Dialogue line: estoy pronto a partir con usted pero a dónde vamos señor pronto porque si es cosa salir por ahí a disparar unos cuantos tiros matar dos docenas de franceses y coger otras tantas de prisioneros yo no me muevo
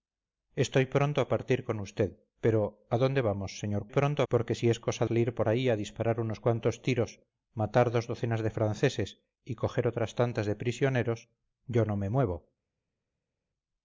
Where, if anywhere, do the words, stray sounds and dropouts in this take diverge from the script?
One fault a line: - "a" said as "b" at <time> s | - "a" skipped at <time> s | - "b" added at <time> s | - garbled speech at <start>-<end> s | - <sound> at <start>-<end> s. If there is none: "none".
none